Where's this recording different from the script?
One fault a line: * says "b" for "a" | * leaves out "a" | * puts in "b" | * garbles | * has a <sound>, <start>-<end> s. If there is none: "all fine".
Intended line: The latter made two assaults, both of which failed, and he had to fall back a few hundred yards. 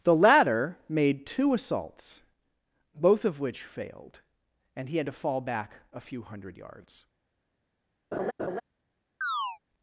* has a laugh, 8.1-8.6 s
* has a chirp, 9.2-9.6 s